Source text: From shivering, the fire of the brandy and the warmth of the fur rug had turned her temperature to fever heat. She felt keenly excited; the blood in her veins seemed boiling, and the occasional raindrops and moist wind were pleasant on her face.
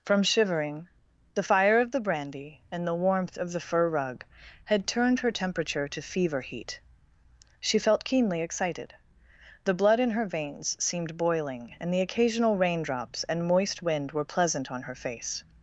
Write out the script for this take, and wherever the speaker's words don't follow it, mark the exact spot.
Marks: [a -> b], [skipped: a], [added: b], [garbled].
From shivering, the fire of the brandy and the warmth of the fur rug had turned her temperature to fever heat. She felt keenly excited; the blood in her veins seemed boiling, and the occasional raindrops and moist wind were pleasant on her face.